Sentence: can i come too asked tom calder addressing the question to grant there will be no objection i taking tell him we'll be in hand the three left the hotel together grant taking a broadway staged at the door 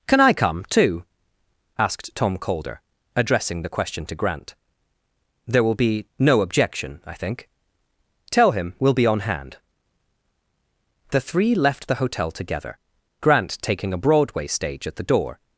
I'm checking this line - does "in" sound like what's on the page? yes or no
no